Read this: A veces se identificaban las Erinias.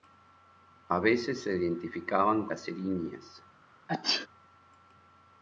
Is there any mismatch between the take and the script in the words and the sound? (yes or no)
yes